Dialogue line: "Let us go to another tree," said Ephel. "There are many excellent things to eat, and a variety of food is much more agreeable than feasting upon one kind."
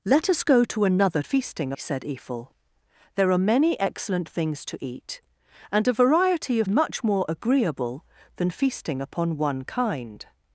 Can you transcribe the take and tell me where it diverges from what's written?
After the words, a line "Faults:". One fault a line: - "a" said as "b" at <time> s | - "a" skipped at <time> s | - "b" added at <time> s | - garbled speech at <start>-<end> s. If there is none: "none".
"Let us go to another feasting," said Ephel. "There are many excellent things to eat, and a variety of much more agreeable than feasting upon one kind."
Faults:
- "tree" said as "feasting" at 1.2 s
- "food is" skipped at 6.7 s